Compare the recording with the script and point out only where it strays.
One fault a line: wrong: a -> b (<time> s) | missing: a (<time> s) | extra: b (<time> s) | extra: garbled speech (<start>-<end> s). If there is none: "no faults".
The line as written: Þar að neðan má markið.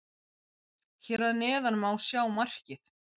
wrong: Þar -> Hér (1.1 s)
extra: sjá (2.1 s)